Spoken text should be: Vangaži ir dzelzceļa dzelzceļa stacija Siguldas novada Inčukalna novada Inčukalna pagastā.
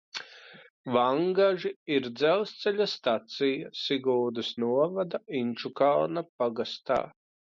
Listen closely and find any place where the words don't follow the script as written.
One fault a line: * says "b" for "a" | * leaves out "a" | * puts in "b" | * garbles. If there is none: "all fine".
* leaves out "dzelzceļa"
* leaves out "novada Inčukalna"